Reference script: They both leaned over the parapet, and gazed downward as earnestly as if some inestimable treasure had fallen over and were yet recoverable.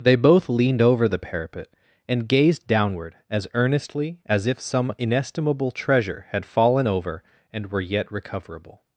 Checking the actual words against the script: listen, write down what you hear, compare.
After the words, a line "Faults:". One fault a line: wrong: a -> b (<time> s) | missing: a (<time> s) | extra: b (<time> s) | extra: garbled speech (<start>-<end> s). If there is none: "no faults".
They both leaned over the parapet, and gazed downward as earnestly as if some inestimable treasure had fallen over and were yet recoverable.
Faults:
no faults